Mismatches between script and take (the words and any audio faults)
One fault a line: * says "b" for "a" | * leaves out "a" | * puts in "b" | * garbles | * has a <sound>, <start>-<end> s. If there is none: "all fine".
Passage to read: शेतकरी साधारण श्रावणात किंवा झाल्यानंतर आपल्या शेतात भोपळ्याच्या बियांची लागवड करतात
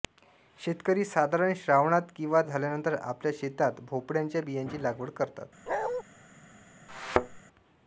* has a bark, 5.7-6.0 s
* has a thud, 6.9-7.4 s